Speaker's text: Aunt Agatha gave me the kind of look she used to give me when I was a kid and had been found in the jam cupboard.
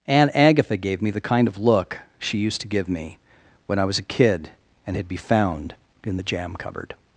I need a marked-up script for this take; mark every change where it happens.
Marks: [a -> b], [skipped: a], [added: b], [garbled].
Aunt Agatha gave me the kind of look she used to give me when I was a kid and had [been -> be] found in the jam cupboard.